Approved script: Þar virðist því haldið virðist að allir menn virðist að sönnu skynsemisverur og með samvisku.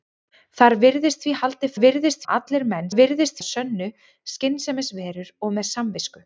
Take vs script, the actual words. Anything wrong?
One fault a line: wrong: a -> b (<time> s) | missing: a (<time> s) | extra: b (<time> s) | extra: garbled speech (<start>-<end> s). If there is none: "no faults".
no faults